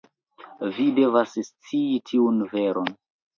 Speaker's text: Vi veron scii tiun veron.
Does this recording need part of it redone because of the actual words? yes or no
yes